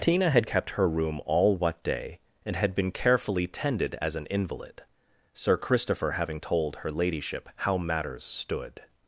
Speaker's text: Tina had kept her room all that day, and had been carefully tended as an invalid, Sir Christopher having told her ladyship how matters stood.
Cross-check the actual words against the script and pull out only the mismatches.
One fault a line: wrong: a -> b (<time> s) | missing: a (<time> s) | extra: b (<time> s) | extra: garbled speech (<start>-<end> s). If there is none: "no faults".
wrong: that -> what (1.6 s)